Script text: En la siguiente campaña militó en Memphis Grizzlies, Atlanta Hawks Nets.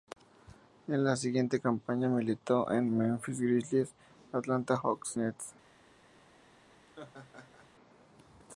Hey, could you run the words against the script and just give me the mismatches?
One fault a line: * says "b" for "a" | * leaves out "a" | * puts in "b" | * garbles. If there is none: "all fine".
all fine